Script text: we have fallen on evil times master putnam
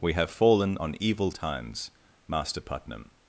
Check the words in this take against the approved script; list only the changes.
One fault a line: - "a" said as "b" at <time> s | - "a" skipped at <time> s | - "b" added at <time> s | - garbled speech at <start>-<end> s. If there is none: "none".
none